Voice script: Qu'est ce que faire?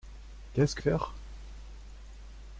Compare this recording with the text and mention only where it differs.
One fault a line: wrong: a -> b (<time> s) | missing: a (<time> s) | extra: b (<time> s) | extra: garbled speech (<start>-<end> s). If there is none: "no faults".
no faults